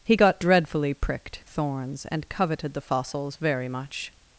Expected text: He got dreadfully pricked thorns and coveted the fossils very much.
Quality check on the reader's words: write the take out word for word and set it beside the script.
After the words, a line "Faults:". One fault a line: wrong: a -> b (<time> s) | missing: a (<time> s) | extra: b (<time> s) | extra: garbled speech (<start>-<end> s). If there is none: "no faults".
He got dreadfully pricked thorns and coveted the fossils very much.
Faults:
no faults